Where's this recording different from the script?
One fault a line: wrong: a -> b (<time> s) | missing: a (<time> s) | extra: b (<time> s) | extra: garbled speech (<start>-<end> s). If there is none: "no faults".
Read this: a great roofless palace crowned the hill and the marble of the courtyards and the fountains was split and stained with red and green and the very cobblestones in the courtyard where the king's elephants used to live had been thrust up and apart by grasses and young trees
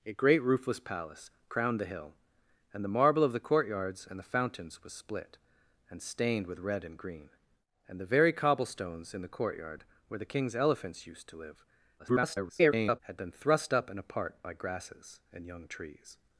extra: garbled speech (12.0-13.0 s)